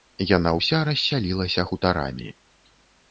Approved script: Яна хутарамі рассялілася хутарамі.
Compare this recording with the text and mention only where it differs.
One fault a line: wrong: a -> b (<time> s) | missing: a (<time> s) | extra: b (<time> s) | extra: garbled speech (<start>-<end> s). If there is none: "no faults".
wrong: хутарамі -> ўся (0.6 s)